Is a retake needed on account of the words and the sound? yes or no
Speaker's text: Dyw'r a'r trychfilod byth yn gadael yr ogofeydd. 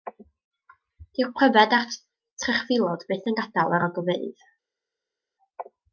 yes